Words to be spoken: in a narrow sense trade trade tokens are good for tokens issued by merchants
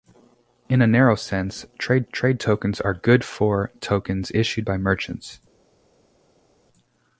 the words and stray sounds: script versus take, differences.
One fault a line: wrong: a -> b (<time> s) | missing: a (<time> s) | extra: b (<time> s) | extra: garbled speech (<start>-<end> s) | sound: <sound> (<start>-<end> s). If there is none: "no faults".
no faults